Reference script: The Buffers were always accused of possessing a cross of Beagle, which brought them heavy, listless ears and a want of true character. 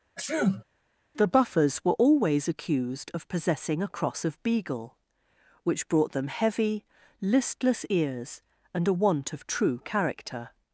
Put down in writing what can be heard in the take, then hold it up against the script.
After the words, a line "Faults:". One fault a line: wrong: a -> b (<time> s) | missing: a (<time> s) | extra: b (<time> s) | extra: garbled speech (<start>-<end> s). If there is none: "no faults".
The Buffers were always accused of possessing a cross of Beagle, which brought them heavy, listless ears and a want of true character.
Faults:
no faults